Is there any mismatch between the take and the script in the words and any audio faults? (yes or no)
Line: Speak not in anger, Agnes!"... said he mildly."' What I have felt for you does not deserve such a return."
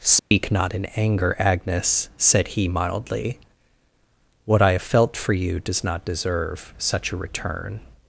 yes